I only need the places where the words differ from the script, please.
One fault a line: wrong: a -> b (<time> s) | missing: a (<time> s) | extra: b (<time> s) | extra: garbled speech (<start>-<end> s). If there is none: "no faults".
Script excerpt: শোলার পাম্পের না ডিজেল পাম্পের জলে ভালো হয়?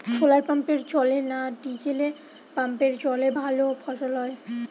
extra: জলে (0.9 s)
extra: ফসল (3.8 s)